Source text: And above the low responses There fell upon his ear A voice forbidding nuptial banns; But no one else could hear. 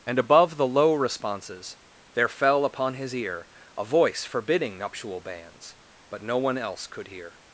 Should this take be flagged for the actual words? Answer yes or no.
no